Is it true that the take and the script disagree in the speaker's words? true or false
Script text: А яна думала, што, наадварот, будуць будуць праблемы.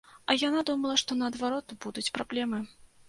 true